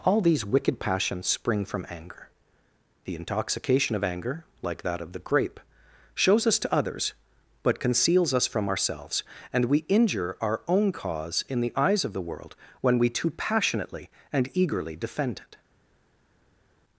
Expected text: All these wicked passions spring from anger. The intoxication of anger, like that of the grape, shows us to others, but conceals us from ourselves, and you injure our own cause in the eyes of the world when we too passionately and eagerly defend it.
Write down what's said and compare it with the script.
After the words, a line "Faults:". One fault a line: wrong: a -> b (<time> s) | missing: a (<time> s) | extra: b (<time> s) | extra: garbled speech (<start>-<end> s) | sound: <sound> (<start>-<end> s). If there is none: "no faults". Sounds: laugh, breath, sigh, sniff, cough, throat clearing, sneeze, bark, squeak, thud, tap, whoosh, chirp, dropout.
All these wicked passions spring from anger. The intoxication of anger, like that of the grape, shows us to others, but conceals us from ourselves, and we injure our own cause in the eyes of the world when we too passionately and eagerly defend it.
Faults:
wrong: you -> we (9.6 s)